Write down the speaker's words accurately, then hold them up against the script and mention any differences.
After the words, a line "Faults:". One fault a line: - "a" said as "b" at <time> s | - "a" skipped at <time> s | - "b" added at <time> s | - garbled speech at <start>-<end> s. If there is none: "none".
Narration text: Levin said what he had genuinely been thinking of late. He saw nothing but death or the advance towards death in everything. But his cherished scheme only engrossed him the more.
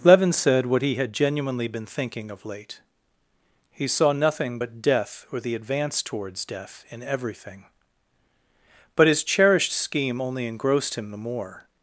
Levin said what he had genuinely been thinking of late. He saw nothing but death or the advance towards death in everything. But his cherished scheme only engrossed him the more.
Faults:
none